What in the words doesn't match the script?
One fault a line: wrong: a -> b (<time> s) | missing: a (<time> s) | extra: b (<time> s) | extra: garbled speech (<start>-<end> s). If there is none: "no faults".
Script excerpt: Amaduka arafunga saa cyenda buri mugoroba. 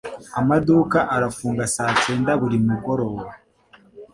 no faults